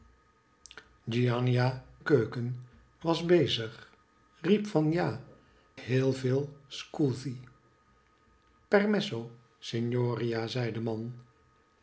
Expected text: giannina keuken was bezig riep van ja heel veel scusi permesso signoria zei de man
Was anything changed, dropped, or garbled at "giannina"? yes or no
no